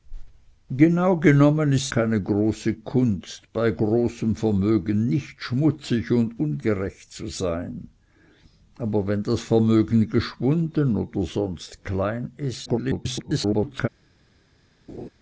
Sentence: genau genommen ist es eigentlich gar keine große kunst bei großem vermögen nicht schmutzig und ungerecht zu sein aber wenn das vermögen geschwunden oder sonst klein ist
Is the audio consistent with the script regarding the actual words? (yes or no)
no